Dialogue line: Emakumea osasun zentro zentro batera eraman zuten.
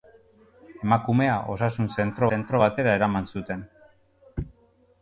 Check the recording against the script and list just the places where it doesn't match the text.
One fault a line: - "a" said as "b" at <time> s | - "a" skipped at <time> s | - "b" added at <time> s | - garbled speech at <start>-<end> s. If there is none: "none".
none